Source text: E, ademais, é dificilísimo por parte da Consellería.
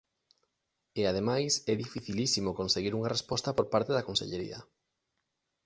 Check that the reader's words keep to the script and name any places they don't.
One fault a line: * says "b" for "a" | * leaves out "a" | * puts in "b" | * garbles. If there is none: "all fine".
* puts in "conseguir unha resposta"